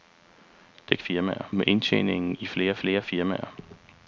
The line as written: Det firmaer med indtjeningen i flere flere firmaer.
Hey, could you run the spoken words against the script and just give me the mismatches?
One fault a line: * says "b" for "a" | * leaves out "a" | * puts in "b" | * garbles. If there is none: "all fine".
all fine